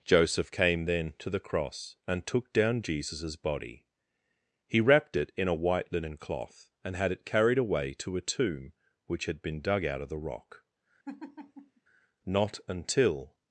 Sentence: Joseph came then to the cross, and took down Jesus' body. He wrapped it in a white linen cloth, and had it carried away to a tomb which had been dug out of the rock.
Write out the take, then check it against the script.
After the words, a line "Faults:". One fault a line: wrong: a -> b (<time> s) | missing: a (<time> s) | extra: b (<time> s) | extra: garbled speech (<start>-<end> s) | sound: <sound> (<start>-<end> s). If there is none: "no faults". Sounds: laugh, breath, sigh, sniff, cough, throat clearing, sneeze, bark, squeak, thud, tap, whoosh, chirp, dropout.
Joseph came then to the cross, and took down Jesus' body. He wrapped it in a white linen cloth, and had it carried away to a tomb which had been dug out of the rock. Not until
Faults:
sound: laugh (11.0-11.8 s)
extra: Not until (12.2 s)